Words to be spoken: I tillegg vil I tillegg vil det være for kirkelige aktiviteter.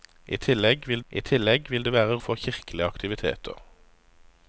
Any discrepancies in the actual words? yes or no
no